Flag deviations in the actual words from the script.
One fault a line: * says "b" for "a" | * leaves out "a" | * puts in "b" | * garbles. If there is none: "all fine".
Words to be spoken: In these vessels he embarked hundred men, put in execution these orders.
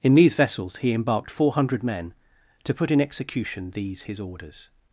* puts in "four"
* puts in "to"
* puts in "his"